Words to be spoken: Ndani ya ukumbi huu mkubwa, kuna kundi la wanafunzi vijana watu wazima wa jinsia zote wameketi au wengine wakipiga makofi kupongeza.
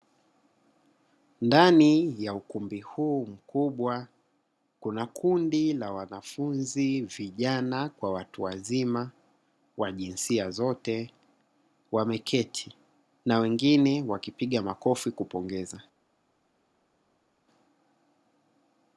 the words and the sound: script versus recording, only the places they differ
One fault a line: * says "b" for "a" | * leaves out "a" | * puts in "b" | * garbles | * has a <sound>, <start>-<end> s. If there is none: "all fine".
* puts in "kwa"
* says "na" for "au"